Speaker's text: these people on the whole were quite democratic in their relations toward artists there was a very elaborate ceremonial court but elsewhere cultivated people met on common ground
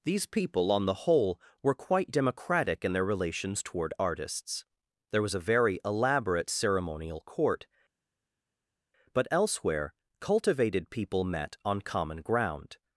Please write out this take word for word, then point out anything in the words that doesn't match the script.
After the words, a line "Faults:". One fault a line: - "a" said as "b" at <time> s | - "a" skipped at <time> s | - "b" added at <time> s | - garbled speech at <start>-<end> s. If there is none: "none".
these people on the whole were quite democratic in their relations toward artists there was a very elaborate ceremonial court but elsewhere cultivated people met on common ground
Faults:
none